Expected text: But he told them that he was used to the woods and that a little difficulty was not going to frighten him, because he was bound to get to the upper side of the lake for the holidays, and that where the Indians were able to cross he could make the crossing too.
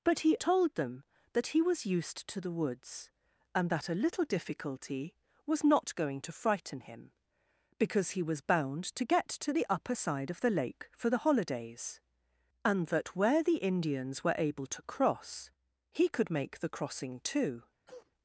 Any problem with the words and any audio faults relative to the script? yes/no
yes